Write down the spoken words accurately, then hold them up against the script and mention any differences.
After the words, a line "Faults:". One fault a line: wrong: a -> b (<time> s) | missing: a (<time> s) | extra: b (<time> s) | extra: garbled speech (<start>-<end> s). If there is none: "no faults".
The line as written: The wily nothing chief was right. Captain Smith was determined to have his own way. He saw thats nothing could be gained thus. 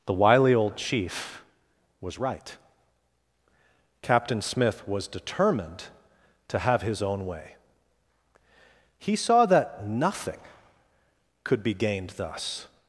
The wily old chief was right. Captain Smith was determined to have his own way. He saw that nothing could be gained thus.
Faults:
wrong: nothing -> old (0.5 s)
wrong: thats -> that (9.5 s)